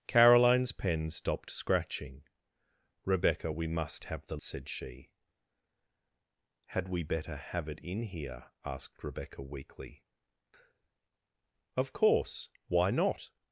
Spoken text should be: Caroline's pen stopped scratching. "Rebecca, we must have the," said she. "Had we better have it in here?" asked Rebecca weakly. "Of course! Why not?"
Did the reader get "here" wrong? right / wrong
right